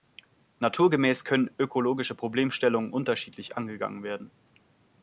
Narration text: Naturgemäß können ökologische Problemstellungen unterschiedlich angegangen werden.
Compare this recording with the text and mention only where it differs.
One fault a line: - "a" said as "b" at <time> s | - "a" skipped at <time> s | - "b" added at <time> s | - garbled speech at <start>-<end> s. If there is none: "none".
none